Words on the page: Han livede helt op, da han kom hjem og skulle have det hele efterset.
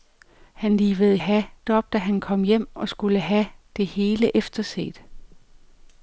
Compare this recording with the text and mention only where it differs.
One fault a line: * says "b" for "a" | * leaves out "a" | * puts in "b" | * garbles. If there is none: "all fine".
* says "have" for "helt"